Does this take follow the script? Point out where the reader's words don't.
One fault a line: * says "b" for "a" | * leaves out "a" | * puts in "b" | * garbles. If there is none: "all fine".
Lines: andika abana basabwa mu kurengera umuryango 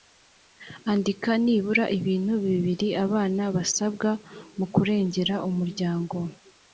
* puts in "nibura ibintu bibiri"